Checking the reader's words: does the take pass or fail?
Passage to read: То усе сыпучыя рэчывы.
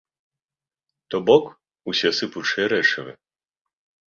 fail